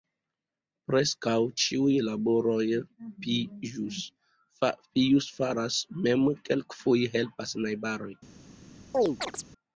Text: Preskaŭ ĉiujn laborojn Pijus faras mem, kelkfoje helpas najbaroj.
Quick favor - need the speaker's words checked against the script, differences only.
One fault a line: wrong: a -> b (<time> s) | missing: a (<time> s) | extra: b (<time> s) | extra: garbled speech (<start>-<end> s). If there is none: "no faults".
no faults